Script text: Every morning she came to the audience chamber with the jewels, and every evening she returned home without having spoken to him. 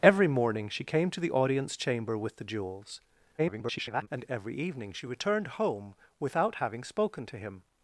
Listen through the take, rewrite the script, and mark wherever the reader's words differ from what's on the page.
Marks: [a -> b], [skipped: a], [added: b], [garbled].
Every morning she came to the audience chamber with the jewels, [garbled] and every evening she returned home without having spoken to him.